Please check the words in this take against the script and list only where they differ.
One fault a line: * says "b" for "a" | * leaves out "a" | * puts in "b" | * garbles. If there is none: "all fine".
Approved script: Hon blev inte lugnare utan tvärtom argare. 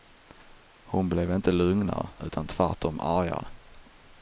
all fine